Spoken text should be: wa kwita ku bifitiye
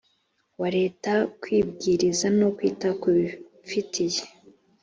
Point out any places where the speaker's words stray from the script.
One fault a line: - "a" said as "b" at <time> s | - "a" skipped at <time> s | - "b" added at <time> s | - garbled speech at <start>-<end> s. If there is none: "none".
- "leta kwibwiriza no" added at 0.8 s